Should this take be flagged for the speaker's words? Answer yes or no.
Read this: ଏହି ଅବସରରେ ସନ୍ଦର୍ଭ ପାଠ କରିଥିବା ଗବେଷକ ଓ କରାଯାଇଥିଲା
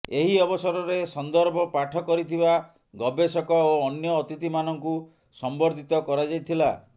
yes